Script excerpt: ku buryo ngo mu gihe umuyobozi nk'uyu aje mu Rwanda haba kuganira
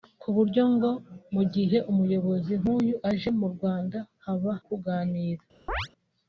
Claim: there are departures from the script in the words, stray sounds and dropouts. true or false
true